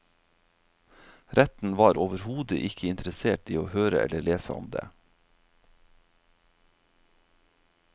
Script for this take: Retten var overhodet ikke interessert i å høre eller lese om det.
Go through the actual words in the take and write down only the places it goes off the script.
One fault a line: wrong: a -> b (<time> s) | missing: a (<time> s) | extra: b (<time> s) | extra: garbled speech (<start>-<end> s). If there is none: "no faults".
no faults